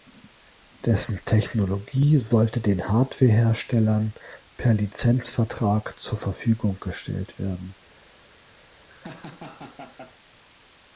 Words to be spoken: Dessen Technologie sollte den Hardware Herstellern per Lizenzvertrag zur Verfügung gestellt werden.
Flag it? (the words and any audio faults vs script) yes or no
yes